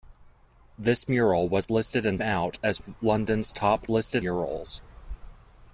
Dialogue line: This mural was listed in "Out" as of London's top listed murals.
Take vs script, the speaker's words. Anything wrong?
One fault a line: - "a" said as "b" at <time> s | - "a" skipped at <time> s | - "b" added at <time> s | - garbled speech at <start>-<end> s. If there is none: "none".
none